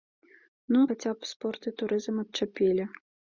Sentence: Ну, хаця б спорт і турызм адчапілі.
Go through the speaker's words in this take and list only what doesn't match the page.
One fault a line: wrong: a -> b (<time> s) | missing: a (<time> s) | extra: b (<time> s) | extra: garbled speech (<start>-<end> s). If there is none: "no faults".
no faults